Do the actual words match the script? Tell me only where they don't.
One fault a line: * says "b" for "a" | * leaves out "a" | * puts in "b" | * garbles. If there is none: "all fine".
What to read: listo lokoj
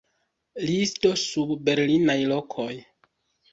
* puts in "sub berlinaj"